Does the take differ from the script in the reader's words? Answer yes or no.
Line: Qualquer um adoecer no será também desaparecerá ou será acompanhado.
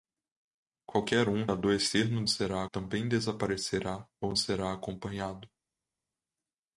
no